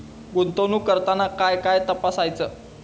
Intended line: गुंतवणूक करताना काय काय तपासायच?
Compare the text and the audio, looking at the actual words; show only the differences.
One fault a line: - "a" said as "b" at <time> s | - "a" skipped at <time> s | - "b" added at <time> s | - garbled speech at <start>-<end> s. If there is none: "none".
none